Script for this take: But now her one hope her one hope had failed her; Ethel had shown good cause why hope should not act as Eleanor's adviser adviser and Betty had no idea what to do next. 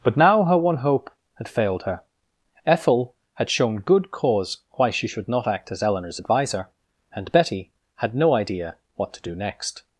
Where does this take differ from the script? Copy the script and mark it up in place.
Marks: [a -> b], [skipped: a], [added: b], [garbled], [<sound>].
But now her one hope [skipped: her one hope] had failed her; Ethel had shown good cause why [hope -> she] should not act as Eleanor's adviser [skipped: adviser] and Betty had no idea what to do next.